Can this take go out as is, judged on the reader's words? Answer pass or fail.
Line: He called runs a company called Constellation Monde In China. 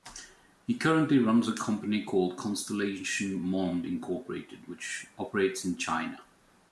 fail